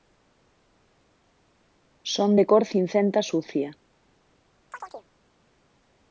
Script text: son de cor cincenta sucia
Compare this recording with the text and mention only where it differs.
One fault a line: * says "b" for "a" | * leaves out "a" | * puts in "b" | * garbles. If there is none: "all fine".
all fine